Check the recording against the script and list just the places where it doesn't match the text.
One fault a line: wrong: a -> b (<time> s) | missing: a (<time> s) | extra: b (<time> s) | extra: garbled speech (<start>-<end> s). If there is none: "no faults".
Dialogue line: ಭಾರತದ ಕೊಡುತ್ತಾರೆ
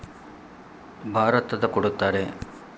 no faults